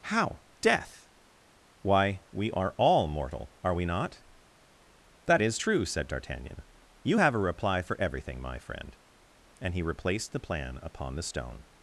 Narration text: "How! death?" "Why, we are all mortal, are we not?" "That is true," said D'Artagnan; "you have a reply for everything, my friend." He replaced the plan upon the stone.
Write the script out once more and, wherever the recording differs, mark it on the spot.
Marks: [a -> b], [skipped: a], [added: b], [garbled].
"How! death?" "Why, we are all mortal, are we not?" "That is true," said D'Artagnan; "you have a reply for everything, my friend." [added: And] He replaced the plan upon the stone.